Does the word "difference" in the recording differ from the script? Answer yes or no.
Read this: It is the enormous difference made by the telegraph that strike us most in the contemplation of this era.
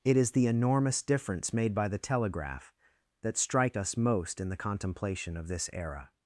no